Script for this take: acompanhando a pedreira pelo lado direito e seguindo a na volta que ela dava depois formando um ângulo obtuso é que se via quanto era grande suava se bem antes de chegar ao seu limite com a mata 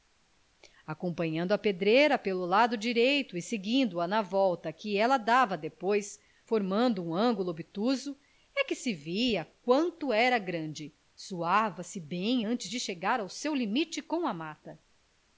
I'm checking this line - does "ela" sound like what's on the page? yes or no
yes